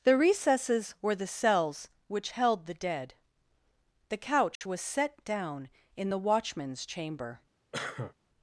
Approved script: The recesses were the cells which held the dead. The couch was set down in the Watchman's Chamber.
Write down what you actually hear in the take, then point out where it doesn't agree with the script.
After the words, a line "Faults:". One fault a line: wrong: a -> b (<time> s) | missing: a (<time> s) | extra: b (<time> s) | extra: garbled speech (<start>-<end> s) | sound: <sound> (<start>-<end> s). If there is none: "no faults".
The recesses were the cells which held the dead. The couch was set down in the Watchman's Chamber.
Faults:
sound: dropout (4.6-4.6 s)
sound: cough (7.7-8.1 s)